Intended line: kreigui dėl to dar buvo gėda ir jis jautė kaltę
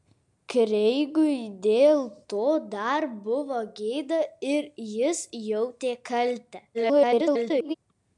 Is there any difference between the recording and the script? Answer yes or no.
yes